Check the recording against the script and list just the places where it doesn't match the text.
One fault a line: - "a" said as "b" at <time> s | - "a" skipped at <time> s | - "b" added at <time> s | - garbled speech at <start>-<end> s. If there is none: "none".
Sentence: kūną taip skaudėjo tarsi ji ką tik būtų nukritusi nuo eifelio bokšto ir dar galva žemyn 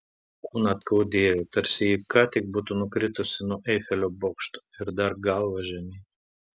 - "taip" skipped at 0.7 s